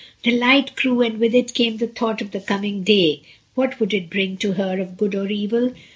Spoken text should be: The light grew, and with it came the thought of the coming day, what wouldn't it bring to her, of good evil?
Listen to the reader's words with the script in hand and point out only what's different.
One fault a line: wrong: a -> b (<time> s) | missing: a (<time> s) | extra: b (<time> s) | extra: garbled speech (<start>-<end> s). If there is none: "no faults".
wrong: wouldn't -> would (3.8 s)
extra: or (5.1 s)